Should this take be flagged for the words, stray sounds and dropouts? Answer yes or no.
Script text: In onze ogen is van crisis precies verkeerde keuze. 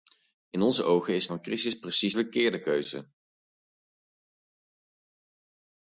no